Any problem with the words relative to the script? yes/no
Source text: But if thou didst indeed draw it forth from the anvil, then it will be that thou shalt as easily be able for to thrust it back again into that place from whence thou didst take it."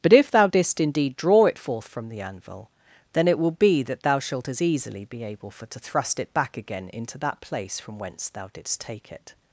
no